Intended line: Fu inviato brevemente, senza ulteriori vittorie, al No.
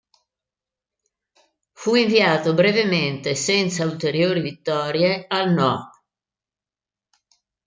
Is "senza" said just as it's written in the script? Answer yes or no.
yes